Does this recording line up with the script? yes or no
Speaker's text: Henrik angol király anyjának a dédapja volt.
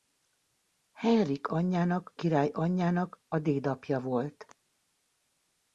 no